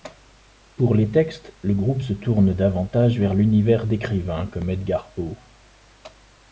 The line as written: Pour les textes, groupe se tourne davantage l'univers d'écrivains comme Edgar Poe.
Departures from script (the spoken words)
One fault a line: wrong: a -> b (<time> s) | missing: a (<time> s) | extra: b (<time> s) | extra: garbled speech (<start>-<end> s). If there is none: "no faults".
extra: le (1.6 s)
extra: vers (3.2 s)